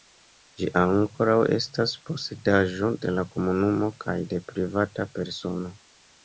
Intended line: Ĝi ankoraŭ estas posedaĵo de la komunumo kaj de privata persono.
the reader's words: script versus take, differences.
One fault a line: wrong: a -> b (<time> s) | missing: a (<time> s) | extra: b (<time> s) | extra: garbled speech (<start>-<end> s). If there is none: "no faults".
no faults